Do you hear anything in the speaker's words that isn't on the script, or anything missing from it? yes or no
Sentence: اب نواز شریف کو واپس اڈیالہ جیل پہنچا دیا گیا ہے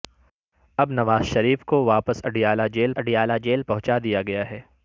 yes